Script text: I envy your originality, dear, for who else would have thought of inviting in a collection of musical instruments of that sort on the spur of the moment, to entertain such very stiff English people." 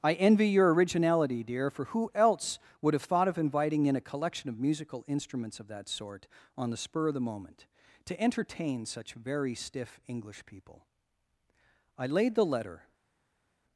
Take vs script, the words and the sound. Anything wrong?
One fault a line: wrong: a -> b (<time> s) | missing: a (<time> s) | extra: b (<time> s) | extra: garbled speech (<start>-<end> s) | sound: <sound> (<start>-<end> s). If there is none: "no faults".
extra: I laid the letter (12.0 s)